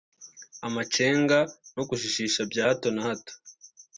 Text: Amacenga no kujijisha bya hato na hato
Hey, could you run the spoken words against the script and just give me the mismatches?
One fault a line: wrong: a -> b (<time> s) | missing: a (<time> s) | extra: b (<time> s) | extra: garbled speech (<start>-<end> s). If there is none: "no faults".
no faults